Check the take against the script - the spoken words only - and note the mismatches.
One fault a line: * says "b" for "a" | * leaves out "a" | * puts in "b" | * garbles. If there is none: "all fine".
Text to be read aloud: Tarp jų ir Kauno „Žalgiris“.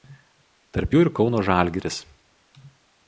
all fine